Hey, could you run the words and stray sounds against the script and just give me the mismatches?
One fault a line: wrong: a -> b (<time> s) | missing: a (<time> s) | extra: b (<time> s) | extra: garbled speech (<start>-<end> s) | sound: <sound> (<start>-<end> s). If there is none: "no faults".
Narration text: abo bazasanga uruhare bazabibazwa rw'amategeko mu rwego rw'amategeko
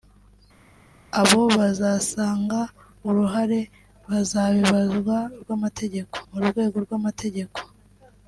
no faults